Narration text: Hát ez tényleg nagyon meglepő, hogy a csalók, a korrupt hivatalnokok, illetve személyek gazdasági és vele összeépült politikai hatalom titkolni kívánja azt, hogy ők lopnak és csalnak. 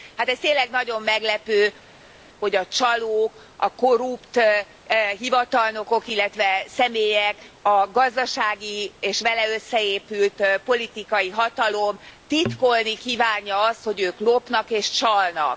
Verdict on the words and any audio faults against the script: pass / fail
fail